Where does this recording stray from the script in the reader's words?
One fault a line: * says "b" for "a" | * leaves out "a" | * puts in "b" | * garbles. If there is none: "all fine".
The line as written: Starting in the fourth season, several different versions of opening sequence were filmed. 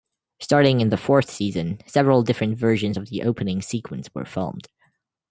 * puts in "the"